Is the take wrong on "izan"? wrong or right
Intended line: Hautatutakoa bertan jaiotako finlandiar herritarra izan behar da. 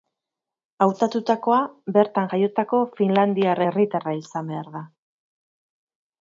right